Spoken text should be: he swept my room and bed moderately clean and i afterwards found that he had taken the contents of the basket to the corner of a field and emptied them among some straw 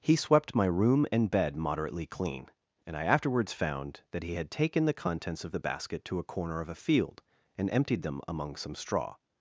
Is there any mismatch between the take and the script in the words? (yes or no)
yes